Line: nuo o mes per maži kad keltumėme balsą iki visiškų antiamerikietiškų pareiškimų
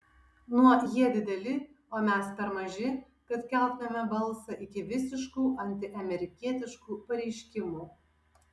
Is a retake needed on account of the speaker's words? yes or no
yes